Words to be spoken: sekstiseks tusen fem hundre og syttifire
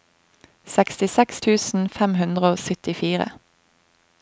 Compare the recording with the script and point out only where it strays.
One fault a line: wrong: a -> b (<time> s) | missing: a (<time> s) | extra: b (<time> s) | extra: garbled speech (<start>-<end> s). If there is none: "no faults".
no faults